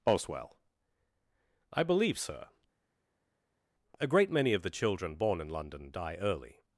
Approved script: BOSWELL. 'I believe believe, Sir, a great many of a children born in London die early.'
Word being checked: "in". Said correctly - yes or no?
yes